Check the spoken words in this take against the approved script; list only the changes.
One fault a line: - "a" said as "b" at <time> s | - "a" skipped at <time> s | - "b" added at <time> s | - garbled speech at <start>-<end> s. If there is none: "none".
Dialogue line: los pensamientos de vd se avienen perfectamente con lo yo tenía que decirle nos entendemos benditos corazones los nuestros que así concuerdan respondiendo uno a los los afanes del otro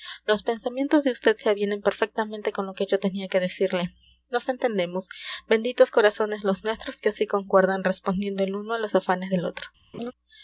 - "que" added at 2.7 s
- "el" added at 8.4 s
- "los" skipped at 8.9 s